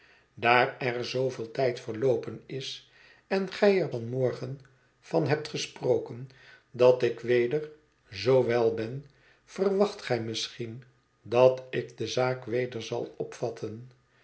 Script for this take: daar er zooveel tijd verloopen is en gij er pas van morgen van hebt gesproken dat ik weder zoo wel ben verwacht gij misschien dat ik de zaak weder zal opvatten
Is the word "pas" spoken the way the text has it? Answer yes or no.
no